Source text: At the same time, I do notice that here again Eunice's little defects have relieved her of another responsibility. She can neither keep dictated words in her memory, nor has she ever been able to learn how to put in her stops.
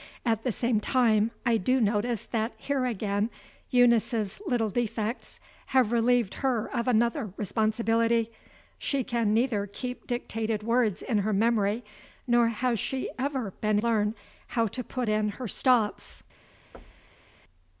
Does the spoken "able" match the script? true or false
false